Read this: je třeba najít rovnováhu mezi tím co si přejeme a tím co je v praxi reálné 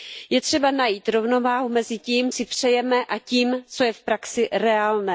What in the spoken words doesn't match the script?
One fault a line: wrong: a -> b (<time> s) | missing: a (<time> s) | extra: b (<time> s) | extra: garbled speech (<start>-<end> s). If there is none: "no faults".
missing: co (2.3 s)